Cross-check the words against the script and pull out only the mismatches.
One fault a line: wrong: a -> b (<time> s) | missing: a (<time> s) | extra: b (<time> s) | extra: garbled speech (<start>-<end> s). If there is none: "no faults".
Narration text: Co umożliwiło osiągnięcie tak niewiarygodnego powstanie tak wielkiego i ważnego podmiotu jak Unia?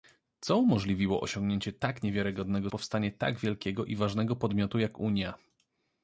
no faults